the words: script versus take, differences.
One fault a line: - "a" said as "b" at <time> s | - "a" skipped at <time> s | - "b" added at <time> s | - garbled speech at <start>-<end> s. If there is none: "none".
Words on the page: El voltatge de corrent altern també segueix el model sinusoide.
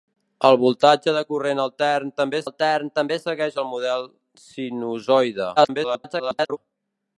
- "altern també" added at 2.4 s
- garbled speech at 5.6-6.6 s